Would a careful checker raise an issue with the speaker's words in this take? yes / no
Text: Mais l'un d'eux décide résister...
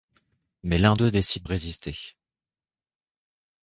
no